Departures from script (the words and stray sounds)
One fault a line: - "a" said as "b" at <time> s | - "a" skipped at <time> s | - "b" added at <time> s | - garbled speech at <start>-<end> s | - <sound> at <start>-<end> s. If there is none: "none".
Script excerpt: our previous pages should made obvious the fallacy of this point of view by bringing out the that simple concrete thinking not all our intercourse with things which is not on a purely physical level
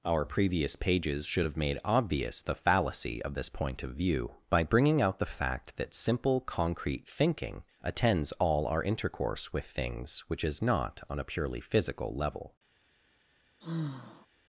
- "have" added at 1.4 s
- "fact" added at 5.3 s
- "not" said as "attends" at 7.8 s
- sigh at 13.6-14.3 s